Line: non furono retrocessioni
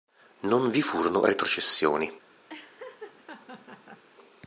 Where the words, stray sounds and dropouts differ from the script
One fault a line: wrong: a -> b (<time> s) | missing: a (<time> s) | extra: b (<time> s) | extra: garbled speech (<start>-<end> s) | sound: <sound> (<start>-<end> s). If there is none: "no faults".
extra: vi (0.7 s)
sound: laugh (2.5-4.0 s)